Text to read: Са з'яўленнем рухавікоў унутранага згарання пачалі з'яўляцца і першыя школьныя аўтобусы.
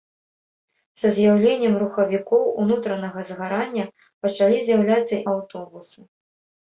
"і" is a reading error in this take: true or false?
true